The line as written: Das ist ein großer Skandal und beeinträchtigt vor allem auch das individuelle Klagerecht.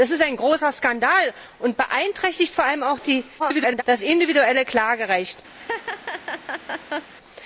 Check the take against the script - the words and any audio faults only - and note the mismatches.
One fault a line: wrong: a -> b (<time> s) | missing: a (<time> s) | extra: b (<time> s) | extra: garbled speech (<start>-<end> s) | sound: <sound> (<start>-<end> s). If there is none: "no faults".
extra: garbled speech (3.4-3.8 s)
sound: laugh (5.6-7.1 s)